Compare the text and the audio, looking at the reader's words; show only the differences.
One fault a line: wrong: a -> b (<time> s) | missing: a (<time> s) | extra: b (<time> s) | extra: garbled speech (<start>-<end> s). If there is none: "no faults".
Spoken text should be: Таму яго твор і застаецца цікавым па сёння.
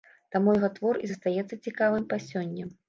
no faults